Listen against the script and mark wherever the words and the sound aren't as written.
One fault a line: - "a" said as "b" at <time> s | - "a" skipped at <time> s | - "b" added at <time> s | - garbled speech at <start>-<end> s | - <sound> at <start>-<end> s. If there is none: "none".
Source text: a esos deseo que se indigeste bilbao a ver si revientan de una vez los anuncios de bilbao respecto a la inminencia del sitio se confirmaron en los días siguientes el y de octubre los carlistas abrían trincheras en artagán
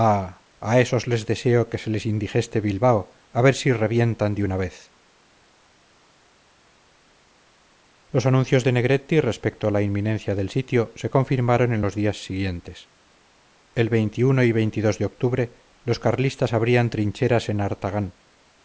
- "les" added at 1.1 s
- "les" added at 1.9 s
- "bilbao" said as "negretti" at 8.8 s